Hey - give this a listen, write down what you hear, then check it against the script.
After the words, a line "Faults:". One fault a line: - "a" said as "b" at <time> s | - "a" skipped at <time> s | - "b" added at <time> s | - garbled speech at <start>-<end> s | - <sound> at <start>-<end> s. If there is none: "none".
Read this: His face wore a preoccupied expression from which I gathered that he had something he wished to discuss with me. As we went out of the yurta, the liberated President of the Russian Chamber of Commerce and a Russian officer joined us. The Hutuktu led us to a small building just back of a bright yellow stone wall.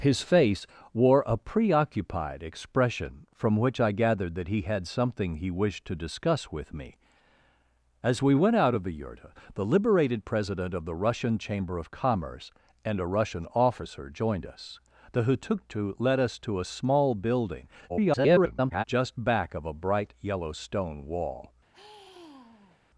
His face wore a preoccupied expression from which I gathered that he had something he wished to discuss with me. As we went out of the yurta, the liberated President of the Russian Chamber of Commerce and a Russian officer joined us. The Hutuktu led us to a small building [garbled] just back of a bright yellow stone wall.
Faults:
- garbled speech at 17.9-18.8 s
- sigh at 21.7-22.8 s